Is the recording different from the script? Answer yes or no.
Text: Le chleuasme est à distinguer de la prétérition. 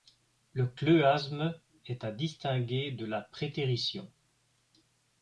no